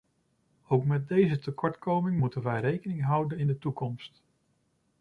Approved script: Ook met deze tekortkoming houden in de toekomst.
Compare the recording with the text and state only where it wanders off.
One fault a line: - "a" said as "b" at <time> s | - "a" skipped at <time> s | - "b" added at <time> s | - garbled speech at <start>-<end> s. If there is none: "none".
- "moeten wij rekening" added at 2.2 s